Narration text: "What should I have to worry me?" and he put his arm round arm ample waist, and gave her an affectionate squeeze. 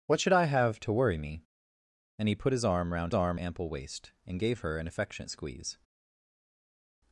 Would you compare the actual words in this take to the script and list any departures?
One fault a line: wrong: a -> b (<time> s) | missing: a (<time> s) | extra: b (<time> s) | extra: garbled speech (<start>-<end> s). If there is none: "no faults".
no faults